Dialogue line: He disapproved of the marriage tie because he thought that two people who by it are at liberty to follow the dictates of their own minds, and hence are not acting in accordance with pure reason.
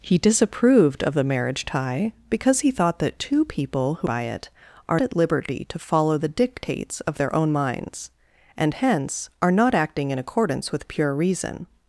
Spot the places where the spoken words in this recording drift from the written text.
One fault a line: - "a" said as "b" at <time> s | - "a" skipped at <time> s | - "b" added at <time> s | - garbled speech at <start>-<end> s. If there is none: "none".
none